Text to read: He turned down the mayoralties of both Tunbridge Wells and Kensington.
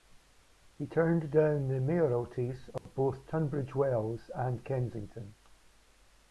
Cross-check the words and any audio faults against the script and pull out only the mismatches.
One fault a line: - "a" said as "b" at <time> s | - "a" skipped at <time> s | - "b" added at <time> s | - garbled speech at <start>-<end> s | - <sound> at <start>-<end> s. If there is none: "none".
- dropout at 2.8-2.9 s